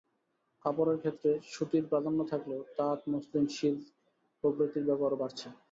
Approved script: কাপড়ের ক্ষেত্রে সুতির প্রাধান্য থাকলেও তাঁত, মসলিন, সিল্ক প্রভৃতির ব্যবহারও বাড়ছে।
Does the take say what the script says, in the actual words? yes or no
yes